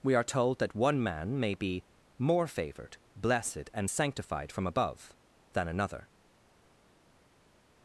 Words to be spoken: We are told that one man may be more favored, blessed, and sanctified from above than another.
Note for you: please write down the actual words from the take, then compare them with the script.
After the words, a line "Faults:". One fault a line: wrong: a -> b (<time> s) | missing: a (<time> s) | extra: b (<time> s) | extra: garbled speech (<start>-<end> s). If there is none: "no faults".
We are told that one man may be more favored, blessed, and sanctified from above than another.
Faults:
no faults